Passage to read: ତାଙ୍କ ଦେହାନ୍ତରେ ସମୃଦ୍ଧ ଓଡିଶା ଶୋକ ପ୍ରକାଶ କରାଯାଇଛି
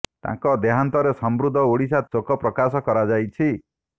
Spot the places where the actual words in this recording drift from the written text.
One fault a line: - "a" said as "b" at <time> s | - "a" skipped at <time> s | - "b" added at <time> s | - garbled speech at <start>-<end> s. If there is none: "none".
none